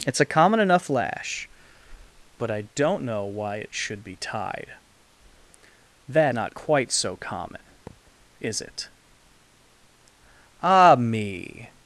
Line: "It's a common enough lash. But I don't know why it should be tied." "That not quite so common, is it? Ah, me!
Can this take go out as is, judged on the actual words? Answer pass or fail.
pass